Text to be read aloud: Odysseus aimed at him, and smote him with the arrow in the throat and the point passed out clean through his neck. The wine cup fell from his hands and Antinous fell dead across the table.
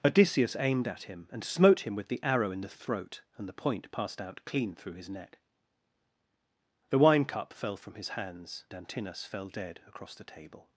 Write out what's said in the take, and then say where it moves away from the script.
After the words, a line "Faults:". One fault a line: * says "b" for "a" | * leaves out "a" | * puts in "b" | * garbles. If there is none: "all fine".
Odysseus aimed at him, and smote him with the arrow in the throat and the point passed out clean through his neck. The wine cup fell from his hands Antinous fell dead across the table.
Faults:
* leaves out "and"